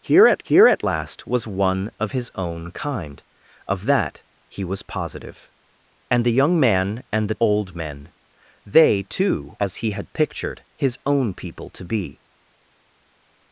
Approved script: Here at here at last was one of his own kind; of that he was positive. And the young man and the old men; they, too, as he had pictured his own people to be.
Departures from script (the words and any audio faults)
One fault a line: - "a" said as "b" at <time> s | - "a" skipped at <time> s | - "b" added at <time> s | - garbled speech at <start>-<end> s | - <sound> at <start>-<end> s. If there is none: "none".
none